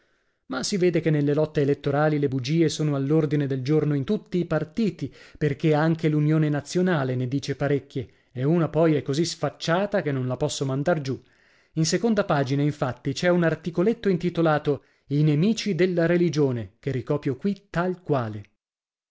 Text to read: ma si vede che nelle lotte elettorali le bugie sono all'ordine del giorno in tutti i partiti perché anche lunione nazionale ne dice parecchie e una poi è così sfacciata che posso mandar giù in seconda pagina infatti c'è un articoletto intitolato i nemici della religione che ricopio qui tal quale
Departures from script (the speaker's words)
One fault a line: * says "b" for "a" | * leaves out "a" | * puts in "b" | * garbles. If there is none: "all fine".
* puts in "non la"